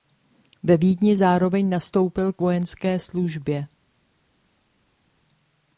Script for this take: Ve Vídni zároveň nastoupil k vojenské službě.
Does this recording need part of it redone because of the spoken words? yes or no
no